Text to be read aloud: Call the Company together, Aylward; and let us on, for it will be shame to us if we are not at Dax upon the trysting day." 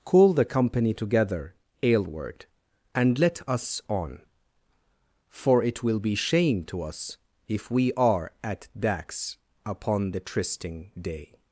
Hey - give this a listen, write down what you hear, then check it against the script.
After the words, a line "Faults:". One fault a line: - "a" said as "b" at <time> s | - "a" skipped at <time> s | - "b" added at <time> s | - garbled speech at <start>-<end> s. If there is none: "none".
Call the Company together, Aylward; and let us on, for it will be shame to us if we are at Dax upon the trysting day."
Faults:
- "not" skipped at 8.3 s